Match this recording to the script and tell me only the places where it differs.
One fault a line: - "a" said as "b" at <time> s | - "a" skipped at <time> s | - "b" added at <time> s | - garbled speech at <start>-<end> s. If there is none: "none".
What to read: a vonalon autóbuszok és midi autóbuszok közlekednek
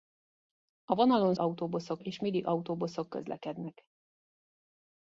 none